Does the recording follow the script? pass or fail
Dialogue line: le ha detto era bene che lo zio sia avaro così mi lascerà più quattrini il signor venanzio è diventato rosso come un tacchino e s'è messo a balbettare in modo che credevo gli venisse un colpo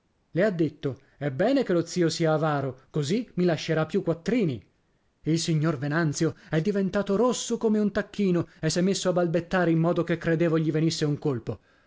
fail